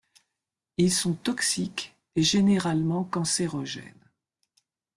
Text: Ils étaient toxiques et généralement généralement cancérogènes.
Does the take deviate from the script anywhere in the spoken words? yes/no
yes